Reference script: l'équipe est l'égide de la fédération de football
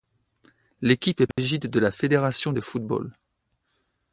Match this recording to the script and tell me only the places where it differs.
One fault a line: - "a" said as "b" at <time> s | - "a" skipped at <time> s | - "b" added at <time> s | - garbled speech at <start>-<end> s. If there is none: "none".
none